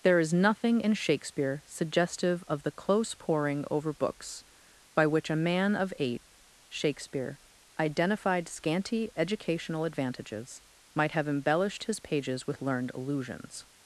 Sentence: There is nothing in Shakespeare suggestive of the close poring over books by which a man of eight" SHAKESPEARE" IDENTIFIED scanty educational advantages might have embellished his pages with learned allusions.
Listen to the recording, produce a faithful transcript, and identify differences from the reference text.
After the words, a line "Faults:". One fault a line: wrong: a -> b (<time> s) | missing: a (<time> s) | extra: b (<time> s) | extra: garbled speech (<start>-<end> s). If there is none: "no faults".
There is nothing in Shakespeare suggestive of the close poring over books by which a man of eight" SHAKESPEARE" IDENTIFIED scanty educational advantages might have embellished his pages with learned allusions.
Faults:
no faults